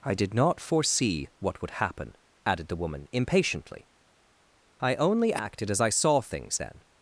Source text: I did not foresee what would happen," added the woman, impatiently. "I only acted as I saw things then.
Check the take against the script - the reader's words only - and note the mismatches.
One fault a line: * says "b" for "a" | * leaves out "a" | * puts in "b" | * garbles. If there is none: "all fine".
all fine